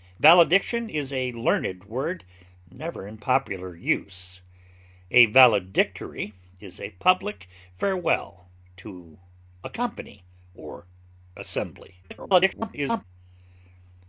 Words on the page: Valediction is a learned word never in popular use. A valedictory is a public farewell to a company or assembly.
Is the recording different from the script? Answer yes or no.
yes